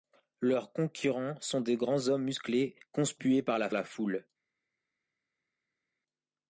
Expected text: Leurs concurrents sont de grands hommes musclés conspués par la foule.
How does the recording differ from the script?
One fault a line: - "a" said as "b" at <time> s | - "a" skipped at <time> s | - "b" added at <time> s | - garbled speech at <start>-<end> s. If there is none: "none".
- "la" added at 3.7 s